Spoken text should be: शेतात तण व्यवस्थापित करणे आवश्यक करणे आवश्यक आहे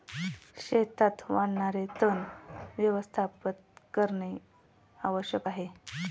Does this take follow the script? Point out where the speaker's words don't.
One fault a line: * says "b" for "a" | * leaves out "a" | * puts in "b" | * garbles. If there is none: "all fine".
* puts in "वाढणारे"
* leaves out "करणे आवश्यक"